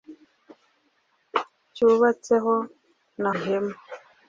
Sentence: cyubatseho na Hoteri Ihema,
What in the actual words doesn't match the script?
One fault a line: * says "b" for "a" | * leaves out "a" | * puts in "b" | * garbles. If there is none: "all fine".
* leaves out "Hoteri"